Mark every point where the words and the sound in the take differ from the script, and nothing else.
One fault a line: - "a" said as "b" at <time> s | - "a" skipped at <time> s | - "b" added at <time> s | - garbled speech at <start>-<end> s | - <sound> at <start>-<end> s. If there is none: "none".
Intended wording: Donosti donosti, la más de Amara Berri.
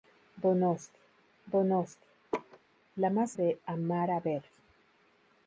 - laugh at 2.3-2.6 s